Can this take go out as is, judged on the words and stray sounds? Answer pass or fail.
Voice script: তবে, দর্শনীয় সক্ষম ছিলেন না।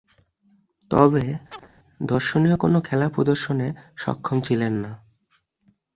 fail